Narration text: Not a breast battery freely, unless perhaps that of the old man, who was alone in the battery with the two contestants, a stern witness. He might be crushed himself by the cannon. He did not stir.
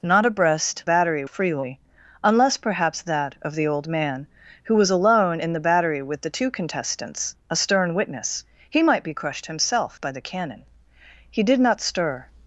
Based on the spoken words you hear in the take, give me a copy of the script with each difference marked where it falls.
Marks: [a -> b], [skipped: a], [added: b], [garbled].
Not a breast battery freely, unless perhaps that of the old man, who was alone in the battery with the two contestants, a stern witness. He might be crushed himself by the cannon. He did not stir.